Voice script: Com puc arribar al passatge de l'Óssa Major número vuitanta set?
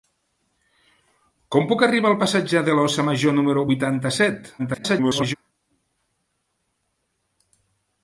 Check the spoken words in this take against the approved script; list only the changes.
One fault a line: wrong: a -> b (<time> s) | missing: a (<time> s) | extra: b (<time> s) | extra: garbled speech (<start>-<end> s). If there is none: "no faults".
extra: garbled speech (4.6-5.3 s)